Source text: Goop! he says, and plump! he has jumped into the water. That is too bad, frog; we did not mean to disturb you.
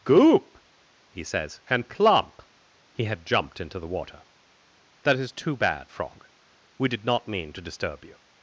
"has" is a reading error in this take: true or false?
true